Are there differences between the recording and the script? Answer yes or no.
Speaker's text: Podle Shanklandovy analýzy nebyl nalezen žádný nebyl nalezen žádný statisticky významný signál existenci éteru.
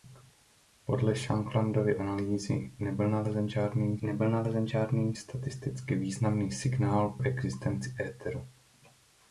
no